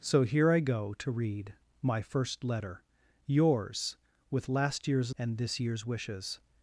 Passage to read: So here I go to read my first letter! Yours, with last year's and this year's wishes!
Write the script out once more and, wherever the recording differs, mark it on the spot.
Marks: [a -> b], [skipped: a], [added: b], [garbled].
So here I go to read my first letter! Yours, with last year's and this year's wishes!